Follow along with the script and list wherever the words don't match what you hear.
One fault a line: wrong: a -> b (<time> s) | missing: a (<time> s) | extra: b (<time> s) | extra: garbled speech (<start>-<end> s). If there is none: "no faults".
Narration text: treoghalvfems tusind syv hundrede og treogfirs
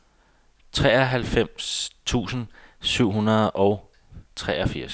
no faults